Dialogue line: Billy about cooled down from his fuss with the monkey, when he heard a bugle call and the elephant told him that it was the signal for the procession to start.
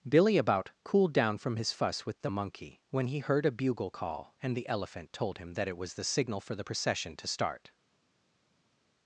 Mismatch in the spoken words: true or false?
false